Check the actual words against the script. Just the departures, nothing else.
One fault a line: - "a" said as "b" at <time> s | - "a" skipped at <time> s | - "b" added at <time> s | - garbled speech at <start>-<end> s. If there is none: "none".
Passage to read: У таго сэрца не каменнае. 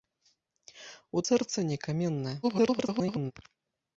- "таго" skipped at 1.2 s
- garbled speech at 2.4-3.3 s